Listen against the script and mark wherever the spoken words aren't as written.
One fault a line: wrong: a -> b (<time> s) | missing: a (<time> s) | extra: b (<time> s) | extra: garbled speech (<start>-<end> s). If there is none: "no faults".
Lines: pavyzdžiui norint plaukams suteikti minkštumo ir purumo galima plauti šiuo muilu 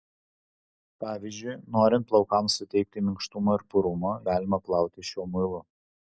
no faults